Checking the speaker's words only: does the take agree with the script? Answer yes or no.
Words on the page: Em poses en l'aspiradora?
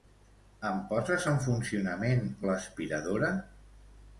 no